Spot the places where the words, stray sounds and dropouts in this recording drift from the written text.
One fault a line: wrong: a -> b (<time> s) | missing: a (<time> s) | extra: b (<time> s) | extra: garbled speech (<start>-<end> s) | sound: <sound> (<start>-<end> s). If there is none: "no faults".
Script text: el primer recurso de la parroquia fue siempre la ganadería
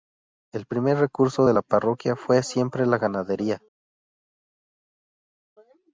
no faults